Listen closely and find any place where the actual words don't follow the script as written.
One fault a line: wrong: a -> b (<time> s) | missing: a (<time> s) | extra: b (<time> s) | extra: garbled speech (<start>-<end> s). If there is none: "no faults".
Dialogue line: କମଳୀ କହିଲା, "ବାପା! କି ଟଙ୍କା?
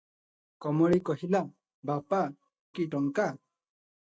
no faults